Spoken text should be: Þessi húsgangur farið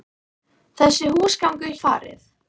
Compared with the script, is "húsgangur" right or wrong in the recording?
right